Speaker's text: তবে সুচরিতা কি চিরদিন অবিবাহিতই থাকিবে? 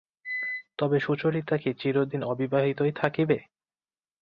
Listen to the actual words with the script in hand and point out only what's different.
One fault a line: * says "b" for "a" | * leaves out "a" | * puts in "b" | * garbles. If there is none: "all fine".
all fine